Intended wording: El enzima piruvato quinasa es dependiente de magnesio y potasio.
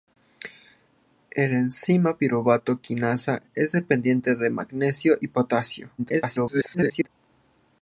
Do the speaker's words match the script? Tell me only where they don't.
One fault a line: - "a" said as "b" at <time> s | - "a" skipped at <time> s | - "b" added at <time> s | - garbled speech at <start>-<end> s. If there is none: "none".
- garbled speech at 6.0-7.1 s